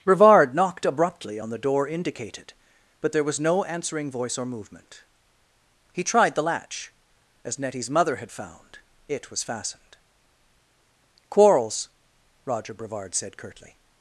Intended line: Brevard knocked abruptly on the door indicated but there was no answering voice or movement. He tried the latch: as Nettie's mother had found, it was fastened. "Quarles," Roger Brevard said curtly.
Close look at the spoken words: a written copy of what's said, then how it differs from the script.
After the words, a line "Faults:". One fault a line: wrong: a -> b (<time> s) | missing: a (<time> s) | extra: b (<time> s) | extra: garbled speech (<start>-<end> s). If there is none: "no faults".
Brevard knocked abruptly on the door indicated but there was no answering voice or movement. He tried the latch: as Nettie's mother had found, it was fastened. "Quarles," Roger Brevard said curtly.
Faults:
no faults